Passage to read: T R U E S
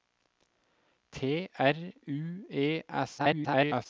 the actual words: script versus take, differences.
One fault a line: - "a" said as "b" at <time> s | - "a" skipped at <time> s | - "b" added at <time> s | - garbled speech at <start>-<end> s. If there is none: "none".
- garbled speech at 3.2-3.9 s